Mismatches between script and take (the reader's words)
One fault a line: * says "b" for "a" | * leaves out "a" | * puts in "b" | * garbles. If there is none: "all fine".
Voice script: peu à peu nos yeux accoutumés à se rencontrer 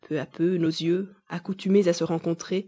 all fine